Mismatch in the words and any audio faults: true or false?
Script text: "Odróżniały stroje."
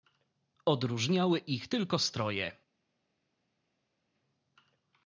true